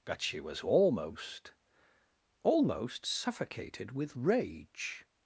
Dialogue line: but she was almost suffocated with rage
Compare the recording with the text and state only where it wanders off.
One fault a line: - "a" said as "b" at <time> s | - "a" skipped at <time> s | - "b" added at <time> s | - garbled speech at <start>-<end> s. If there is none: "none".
- "almost" added at 2.4 s